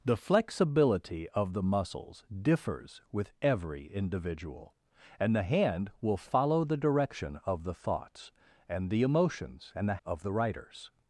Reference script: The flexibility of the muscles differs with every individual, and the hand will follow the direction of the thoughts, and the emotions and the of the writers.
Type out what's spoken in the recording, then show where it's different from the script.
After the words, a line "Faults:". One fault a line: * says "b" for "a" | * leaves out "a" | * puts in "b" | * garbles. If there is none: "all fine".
The flexibility of the muscles differs with every individual, and the hand will follow the direction of the thoughts, and the emotions and the of the writers.
Faults:
all fine